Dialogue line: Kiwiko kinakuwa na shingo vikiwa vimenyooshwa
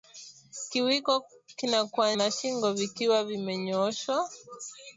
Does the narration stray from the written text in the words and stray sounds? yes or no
no